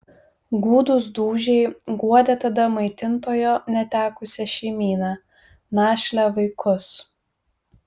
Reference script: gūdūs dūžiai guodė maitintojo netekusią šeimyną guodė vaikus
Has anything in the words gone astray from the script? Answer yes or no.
yes